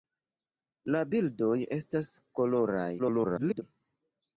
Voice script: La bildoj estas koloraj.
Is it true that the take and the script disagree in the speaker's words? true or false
true